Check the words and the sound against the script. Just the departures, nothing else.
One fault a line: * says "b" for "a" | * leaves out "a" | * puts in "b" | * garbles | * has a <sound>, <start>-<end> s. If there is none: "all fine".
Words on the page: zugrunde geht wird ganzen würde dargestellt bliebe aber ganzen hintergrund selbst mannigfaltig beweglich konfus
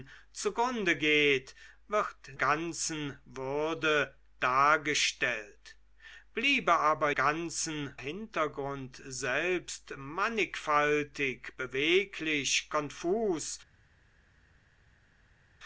all fine